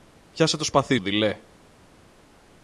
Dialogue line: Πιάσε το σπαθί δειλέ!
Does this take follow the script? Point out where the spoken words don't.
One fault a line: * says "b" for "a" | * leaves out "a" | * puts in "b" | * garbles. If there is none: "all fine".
all fine